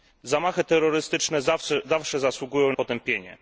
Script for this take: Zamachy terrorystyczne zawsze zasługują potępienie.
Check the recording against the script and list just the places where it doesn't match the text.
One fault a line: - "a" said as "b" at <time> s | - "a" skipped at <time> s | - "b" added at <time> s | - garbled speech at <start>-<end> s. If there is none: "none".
none